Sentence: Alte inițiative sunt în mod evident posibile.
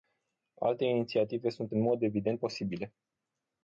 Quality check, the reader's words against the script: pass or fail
pass